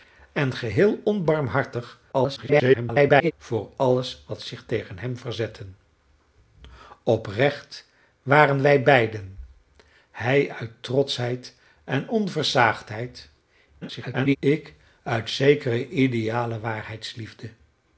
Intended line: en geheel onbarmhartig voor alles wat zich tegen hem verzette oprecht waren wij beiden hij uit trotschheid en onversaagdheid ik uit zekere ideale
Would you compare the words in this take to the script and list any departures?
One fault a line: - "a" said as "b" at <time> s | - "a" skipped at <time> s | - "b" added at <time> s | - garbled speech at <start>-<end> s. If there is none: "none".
- garbled speech at 2.1-3.3 s
- garbled speech at 13.8-14.4 s